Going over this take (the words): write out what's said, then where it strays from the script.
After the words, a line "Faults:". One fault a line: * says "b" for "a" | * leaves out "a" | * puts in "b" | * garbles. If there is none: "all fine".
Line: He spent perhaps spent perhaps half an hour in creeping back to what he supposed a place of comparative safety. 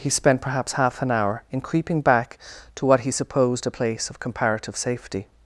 He spent perhaps half an hour in creeping back to what he supposed a place of comparative safety.
Faults:
* leaves out "spent perhaps"